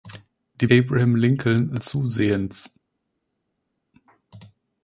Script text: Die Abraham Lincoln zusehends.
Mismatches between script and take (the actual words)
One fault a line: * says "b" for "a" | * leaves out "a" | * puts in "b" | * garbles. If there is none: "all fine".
all fine